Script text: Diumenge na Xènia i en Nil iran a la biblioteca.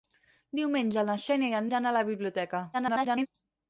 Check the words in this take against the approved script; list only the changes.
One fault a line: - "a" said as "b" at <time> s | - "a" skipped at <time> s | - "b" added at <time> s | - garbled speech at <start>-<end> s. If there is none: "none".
- "Nil" skipped at 1.7 s
- garbled speech at 2.7-3.3 s